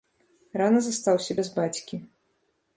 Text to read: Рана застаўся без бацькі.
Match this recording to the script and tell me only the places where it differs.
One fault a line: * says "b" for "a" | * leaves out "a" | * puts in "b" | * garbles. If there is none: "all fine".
all fine